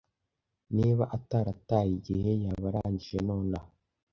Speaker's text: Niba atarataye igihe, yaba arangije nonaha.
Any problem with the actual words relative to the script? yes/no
no